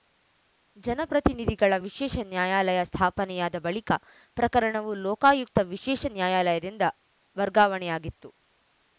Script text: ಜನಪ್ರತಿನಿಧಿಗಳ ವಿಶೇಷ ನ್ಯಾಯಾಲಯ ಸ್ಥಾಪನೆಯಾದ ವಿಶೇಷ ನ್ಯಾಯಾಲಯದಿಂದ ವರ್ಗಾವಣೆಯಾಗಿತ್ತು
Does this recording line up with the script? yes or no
no